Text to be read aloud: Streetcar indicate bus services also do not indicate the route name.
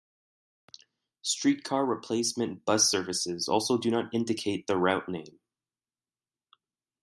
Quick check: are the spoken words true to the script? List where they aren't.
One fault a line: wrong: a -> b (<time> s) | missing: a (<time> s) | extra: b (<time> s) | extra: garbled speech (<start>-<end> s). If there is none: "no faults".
wrong: indicate -> replacement (1.9 s)